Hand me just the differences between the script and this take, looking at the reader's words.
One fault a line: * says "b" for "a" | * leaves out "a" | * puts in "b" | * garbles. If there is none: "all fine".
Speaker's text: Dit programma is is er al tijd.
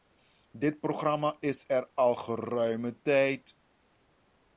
* leaves out "is"
* puts in "geruime"